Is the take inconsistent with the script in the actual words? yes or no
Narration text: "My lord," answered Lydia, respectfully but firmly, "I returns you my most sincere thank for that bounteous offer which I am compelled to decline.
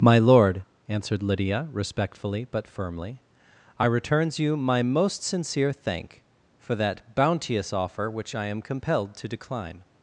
no